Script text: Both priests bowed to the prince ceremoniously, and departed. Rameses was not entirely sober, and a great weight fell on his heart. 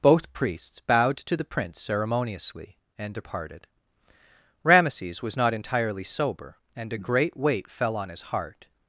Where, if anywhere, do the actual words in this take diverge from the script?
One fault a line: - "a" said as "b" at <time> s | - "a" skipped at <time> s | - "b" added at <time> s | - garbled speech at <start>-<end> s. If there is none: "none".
none